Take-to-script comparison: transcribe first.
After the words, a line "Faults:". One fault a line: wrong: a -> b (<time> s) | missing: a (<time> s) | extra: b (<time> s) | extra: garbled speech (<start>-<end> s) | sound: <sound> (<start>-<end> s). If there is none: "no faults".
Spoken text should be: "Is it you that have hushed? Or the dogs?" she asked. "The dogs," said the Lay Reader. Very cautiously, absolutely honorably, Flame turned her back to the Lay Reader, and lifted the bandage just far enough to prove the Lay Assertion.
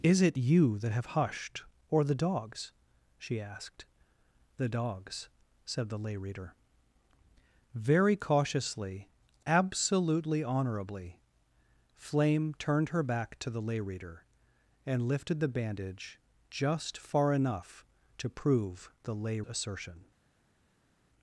"Is it you that have hushed? Or the dogs?" she asked. "The dogs," said the Lay Reader. Very cautiously, absolutely honorably, Flame turned her back to the Lay Reader, and lifted the bandage just far enough to prove the Lay Assertion.
Faults:
no faults